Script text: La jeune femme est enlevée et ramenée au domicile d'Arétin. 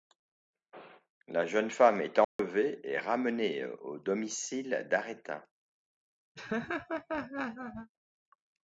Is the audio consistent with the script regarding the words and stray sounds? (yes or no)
no